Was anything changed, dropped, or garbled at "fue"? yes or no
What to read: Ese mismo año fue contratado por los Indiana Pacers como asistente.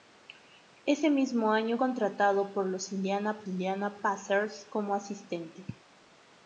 yes